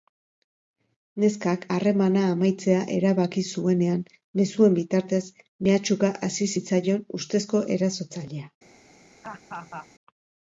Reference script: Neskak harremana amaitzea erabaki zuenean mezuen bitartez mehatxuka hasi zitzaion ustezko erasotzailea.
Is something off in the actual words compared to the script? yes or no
no